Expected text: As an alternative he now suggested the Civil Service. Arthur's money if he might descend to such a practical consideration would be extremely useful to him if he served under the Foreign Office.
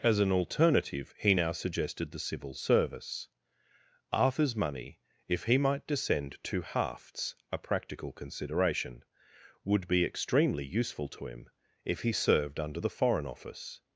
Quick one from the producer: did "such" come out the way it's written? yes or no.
no